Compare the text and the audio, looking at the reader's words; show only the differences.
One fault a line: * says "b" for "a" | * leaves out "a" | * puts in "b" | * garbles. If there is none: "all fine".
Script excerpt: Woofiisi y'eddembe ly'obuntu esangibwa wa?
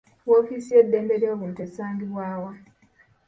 all fine